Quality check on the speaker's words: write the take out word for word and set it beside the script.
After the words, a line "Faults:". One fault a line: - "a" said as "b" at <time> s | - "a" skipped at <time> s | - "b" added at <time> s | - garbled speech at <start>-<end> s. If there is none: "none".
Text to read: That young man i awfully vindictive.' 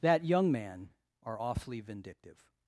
That young man are awfully vindictive.'
Faults:
- "i" said as "are" at 1.2 s